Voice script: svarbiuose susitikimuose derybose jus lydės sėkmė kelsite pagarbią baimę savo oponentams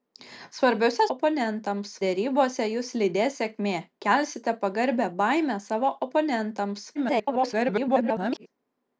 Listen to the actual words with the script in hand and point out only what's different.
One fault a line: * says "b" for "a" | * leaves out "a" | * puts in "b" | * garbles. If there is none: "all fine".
* says "oponentams" for "susitikimuose"
* garbles